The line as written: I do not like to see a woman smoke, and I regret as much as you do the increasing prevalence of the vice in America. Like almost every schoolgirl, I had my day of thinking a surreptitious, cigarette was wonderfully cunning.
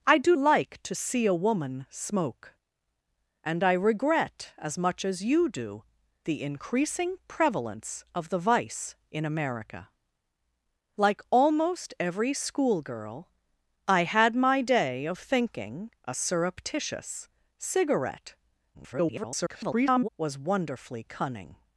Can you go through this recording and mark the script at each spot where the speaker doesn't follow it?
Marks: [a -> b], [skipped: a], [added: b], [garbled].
I do [skipped: not] like to see a woman smoke, and I regret as much as you do the increasing prevalence of the vice in America. Like almost every schoolgirl, I had my day of thinking a surreptitious, cigarette [garbled] was wonderfully cunning.